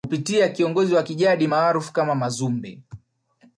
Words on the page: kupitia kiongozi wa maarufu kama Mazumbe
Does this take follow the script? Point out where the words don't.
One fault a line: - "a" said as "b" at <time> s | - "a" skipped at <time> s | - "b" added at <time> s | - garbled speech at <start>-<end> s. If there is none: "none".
- "kijadi" added at 1.0 s